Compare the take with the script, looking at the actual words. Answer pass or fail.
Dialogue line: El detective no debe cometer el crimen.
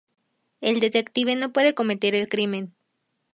fail